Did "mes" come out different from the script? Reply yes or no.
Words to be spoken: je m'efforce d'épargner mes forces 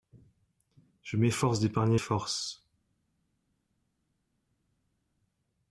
yes